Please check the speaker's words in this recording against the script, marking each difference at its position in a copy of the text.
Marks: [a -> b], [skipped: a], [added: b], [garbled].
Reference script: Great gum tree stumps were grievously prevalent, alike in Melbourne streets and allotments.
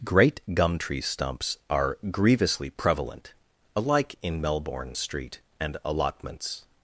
Great gum tree stumps [were -> are] grievously prevalent, alike in Melbourne [streets -> street] and allotments.